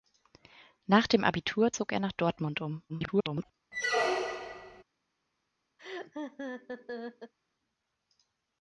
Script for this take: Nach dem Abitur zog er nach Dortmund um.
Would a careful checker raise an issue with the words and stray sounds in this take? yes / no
yes